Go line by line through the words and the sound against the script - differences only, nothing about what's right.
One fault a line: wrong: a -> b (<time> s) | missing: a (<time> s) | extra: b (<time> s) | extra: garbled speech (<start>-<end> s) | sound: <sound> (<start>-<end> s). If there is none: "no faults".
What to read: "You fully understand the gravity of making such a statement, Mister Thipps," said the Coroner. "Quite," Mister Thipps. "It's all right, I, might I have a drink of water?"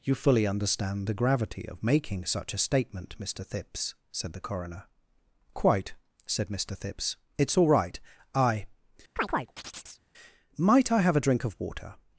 extra: said (6.2 s)
sound: chirp (9.2-10.0 s)